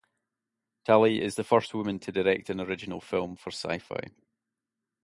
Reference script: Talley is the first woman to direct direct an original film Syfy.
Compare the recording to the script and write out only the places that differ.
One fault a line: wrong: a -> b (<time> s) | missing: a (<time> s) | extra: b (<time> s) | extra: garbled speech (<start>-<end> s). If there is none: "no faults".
missing: direct (2.5 s)
extra: for (3.4 s)